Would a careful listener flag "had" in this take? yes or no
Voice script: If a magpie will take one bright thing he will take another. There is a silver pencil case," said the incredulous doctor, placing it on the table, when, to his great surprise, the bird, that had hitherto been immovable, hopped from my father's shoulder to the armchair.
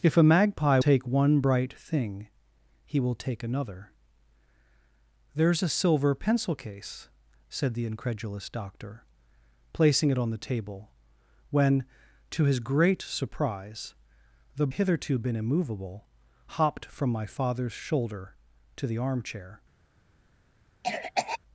yes